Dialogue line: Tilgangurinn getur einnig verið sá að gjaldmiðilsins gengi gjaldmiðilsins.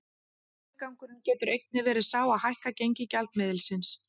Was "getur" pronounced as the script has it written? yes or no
yes